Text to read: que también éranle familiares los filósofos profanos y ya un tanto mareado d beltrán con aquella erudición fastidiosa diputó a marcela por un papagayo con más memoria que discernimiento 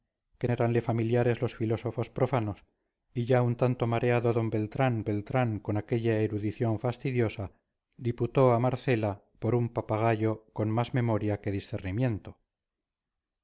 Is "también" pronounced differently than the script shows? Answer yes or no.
yes